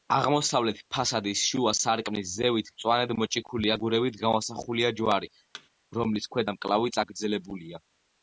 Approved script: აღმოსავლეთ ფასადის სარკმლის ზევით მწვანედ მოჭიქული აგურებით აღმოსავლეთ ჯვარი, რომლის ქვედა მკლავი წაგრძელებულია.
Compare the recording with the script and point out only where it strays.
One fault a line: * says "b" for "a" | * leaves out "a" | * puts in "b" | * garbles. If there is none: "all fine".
* puts in "შუა"
* says "გამოსახულია" for "აღმოსავლეთ"